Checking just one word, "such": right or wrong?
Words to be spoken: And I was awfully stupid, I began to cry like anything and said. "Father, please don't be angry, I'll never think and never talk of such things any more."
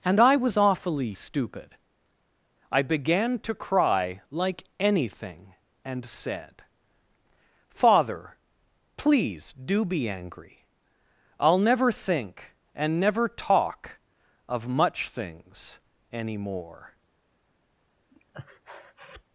wrong